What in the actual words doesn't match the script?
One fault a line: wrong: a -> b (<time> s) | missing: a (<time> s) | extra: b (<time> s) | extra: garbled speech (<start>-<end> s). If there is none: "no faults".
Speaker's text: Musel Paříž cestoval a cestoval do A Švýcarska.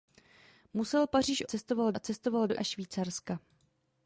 no faults